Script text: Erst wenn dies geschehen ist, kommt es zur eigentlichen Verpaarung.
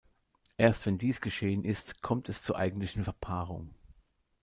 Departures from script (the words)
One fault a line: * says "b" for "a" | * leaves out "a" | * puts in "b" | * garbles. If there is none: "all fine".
all fine